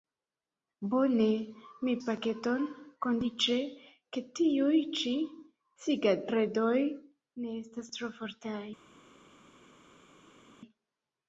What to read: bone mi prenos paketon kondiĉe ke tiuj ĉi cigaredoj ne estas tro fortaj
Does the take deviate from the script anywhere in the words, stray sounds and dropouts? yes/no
yes